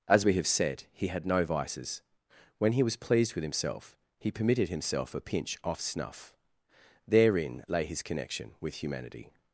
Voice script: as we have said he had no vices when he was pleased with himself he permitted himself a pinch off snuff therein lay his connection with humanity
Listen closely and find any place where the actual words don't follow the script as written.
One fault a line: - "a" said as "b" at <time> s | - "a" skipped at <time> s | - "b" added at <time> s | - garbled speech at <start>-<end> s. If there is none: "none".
none